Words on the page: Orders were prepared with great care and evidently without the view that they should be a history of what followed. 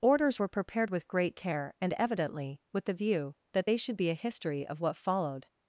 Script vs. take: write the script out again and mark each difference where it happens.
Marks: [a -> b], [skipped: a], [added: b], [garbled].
Orders were prepared with great care and evidently [without -> with] the view that they should be a history of what followed.